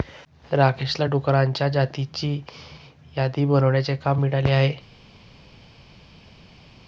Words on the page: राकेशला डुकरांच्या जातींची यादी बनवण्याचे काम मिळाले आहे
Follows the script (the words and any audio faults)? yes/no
yes